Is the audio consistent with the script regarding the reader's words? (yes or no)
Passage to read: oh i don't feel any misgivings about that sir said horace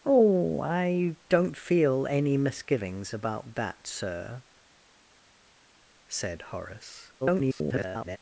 no